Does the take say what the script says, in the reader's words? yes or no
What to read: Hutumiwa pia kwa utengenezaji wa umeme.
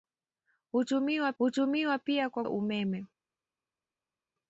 no